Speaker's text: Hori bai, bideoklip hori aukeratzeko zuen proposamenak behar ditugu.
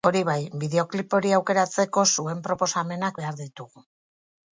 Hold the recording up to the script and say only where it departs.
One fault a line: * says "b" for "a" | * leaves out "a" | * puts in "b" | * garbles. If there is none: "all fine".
all fine